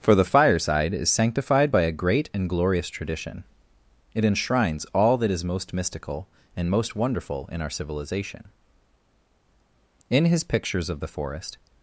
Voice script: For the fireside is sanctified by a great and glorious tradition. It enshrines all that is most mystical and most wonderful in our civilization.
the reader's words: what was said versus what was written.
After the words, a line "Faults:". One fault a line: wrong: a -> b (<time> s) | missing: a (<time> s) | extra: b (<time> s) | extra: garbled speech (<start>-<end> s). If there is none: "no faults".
For the fireside is sanctified by a great and glorious tradition. It enshrines all that is most mystical and most wonderful in our civilization. In his pictures of the forest
Faults:
extra: In his pictures of the forest (10.1 s)